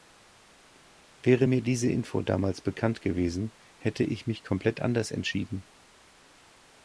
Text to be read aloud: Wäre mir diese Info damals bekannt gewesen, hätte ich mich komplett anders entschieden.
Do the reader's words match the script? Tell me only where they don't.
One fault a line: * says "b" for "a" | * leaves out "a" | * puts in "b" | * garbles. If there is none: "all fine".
all fine